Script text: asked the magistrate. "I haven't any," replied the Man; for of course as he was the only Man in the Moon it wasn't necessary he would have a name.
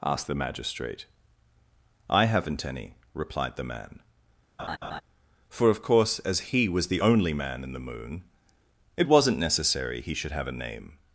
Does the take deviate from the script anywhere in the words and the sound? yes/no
yes